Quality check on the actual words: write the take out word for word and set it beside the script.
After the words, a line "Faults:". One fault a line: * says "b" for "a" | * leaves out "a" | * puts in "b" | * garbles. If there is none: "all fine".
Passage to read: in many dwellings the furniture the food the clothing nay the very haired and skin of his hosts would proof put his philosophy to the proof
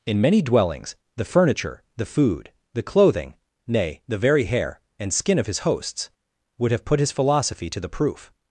in many dwellings the furniture the food the clothing nay the very hair and skin of his hosts would have put his philosophy to the proof
Faults:
* says "hair" for "haired"
* says "have" for "proof"